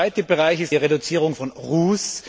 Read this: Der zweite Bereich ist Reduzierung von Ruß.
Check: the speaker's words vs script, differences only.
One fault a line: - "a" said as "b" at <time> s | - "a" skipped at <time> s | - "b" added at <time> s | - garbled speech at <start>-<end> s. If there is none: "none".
none